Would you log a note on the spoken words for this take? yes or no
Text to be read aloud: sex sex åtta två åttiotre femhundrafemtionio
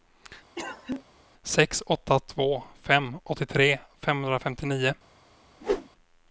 yes